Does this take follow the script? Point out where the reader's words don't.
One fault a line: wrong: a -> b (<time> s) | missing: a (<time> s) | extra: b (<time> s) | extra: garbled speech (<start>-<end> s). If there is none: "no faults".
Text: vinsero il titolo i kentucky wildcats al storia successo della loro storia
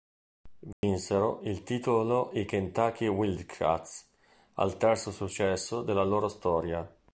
wrong: storia -> terzo (4.8 s)